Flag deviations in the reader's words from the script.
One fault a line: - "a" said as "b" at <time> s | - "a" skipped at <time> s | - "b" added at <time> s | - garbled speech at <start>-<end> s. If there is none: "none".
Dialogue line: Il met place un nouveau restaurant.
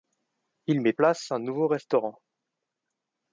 none